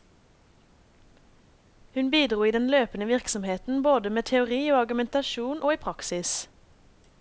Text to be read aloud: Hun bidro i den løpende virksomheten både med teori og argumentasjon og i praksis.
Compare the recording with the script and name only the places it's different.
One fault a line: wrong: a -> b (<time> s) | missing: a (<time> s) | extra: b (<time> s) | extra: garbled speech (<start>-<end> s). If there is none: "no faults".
no faults